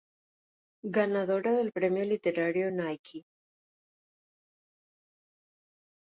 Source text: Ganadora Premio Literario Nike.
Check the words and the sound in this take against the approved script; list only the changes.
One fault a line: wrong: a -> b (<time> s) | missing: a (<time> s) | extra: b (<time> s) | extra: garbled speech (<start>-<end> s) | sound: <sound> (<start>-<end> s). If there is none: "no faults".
extra: del (1.5 s)